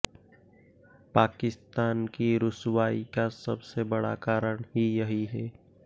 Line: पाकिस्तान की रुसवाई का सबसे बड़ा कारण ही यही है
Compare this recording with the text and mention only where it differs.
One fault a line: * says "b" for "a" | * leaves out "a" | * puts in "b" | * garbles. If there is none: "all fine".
all fine